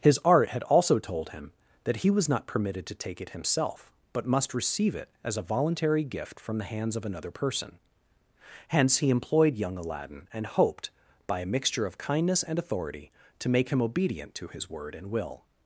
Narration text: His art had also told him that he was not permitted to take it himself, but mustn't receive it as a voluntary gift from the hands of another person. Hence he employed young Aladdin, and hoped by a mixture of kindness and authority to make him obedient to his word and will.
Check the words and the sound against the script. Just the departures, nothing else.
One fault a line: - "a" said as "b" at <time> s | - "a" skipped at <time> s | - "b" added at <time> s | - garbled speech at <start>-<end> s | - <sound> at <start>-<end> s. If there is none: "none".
- "mustn't" said as "must" at 4.2 s